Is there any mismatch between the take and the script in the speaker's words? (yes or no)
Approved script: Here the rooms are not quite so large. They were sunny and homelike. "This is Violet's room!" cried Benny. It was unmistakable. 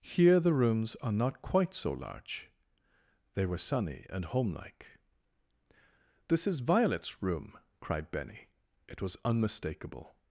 no